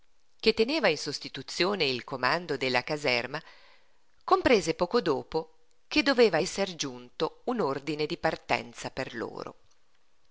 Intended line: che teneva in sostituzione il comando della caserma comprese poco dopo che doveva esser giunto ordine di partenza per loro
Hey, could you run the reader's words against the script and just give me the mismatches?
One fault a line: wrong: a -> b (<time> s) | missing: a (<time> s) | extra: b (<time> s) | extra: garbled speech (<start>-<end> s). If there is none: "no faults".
extra: un (7.5 s)